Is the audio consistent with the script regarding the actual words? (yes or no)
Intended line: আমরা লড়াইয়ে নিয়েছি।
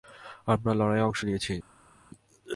no